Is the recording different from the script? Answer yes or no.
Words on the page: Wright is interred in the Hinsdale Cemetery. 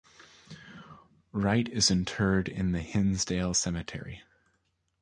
no